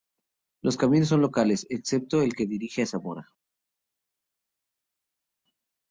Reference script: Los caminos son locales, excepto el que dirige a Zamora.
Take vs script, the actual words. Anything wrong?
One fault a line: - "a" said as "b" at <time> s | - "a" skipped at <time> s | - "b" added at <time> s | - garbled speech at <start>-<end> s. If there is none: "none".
none